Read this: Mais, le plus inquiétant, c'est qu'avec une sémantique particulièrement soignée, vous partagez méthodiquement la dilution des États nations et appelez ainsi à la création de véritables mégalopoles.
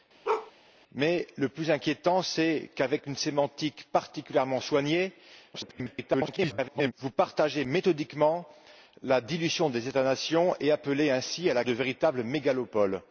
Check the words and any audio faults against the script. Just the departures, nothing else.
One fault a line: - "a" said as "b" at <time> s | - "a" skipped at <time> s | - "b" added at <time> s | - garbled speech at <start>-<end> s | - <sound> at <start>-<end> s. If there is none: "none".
- bark at 0.2-0.5 s
- garbled speech at 5.5-6.9 s
- "création" skipped at 11.6 s